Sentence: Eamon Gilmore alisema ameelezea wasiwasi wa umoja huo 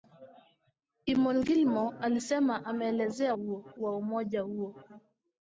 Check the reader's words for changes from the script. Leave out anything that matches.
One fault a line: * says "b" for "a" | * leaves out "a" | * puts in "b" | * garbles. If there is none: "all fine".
* says "huo" for "wasiwasi"